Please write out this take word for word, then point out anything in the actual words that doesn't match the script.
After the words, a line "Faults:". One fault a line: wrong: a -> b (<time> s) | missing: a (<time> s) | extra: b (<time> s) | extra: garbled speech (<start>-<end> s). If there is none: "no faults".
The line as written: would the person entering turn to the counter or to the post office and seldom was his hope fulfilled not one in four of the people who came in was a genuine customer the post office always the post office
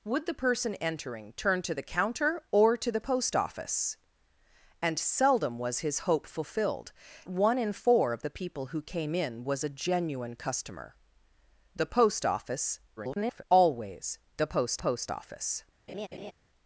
would the person entering turn to the counter or to the post office and seldom was his hope fulfilled one in four of the people who came in was a genuine customer the post office [garbled] always the post post office
Faults:
missing: not (6.9 s)
extra: garbled speech (13.0-13.4 s)
extra: post (14.8 s)